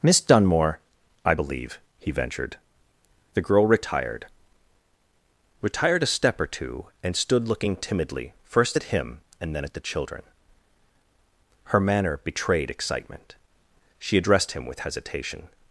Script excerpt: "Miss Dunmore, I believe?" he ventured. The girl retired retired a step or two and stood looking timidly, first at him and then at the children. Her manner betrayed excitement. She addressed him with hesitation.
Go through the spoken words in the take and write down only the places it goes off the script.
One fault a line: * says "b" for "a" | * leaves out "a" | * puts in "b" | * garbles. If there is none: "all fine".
all fine